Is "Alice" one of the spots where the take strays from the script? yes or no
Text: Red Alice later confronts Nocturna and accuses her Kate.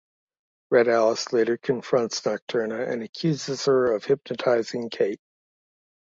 no